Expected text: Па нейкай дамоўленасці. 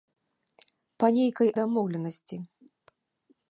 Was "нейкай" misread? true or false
false